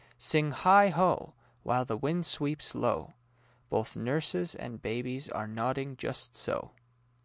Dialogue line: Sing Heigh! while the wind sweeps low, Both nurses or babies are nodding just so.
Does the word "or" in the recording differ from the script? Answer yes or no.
yes